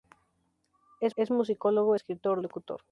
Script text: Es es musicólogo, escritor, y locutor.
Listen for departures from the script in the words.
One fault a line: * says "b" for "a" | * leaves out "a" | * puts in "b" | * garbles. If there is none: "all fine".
all fine